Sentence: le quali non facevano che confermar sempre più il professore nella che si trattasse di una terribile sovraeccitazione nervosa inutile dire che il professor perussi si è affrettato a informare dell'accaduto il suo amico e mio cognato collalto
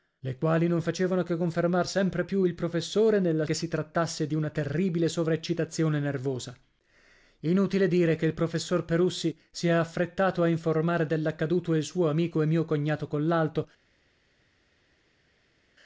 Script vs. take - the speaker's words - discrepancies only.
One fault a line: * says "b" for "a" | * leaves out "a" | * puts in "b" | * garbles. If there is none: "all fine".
all fine